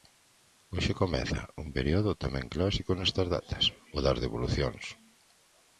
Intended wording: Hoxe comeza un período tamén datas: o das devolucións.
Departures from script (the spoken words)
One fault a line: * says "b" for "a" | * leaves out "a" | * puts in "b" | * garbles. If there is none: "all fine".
* puts in "clásico nestas"